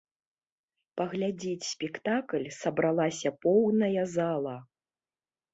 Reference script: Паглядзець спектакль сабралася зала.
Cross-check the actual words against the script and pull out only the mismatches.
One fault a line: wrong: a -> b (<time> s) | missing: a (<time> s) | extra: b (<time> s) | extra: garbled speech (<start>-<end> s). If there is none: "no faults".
extra: поўная (3.5 s)